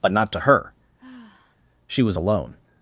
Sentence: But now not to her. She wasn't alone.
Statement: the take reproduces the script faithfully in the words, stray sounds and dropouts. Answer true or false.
false